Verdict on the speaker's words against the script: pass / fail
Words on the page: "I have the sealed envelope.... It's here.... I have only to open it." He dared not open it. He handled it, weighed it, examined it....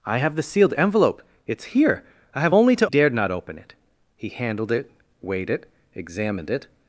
fail